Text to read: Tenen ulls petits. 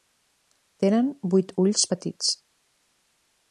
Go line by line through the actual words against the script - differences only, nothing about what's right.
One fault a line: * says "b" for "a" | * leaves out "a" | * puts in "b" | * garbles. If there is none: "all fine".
* puts in "vuit"